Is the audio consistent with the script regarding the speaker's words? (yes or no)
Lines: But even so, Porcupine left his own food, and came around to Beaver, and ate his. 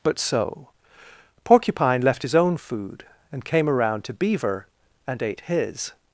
no